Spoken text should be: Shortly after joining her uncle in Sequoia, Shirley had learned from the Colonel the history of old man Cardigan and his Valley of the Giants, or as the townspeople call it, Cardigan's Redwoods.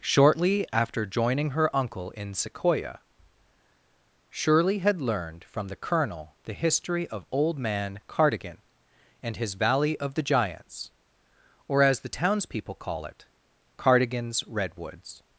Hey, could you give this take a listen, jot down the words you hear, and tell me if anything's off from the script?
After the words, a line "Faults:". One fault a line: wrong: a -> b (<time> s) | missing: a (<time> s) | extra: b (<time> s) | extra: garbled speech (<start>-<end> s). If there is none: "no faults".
Shortly after joining her uncle in Sequoia, Shirley had learned from the Colonel the history of old man Cardigan and his Valley of the Giants, or as the townspeople call it, Cardigan's Redwoods.
Faults:
no faults